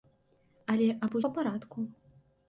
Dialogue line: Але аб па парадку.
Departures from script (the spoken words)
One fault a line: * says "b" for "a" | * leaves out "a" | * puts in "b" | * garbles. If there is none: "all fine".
all fine